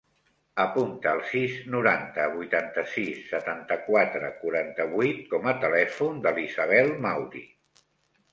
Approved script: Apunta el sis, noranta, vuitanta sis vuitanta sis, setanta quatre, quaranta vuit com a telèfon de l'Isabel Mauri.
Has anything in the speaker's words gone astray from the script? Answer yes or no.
yes